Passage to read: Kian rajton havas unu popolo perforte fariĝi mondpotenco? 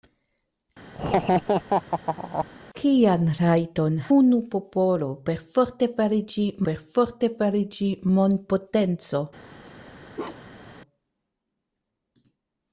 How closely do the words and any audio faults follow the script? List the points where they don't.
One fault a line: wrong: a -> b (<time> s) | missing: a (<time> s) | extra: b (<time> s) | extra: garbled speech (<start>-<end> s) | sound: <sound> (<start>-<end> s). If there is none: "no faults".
sound: laugh (0.9-2.5 s)
missing: havas (4.0 s)
extra: perforte fariĝi (6.7 s)
sound: bark (10.1-10.7 s)